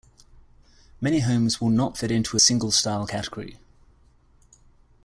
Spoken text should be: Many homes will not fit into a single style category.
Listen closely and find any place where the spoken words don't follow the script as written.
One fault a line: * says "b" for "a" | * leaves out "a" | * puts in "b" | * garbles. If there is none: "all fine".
all fine